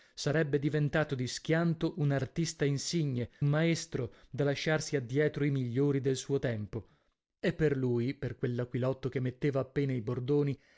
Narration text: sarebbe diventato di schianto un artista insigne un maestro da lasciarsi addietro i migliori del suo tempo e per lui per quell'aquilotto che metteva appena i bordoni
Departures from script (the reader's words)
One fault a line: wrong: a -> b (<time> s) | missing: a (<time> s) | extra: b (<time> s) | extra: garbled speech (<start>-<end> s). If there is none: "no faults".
missing: un (3.3 s)